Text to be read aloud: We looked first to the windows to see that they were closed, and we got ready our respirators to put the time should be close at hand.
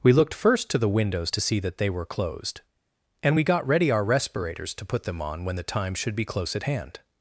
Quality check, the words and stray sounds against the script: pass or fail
fail